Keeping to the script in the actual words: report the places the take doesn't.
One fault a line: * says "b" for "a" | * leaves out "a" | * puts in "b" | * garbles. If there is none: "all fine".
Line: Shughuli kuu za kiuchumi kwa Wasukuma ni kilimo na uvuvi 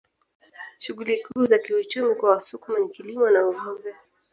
all fine